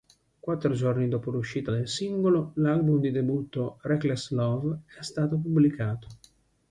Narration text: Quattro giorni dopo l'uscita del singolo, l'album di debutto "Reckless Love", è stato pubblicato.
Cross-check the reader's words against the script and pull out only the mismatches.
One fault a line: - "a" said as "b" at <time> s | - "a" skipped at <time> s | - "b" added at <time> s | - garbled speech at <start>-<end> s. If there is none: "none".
none